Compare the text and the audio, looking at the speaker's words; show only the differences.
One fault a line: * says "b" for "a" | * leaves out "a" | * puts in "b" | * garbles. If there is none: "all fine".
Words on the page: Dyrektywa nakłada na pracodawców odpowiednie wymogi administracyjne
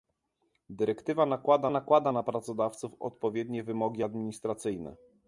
* puts in "nakłada"